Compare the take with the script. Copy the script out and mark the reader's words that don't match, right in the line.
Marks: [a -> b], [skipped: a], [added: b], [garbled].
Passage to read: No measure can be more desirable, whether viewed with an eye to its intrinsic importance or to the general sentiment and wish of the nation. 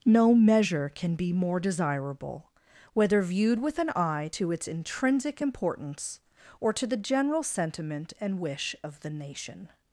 No measure can be more desirable, whether viewed with an eye to its intrinsic importance or to the general sentiment and wish of the nation.